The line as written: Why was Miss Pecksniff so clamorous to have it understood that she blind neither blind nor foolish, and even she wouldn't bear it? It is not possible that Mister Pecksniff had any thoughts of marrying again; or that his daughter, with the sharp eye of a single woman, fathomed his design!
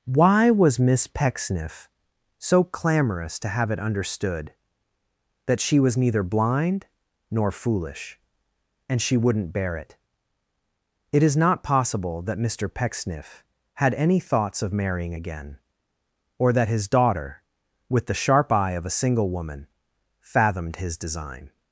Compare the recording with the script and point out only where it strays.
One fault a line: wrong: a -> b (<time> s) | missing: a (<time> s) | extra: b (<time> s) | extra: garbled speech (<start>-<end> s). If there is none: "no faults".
wrong: blind -> was (5.8 s)
missing: even (9.0 s)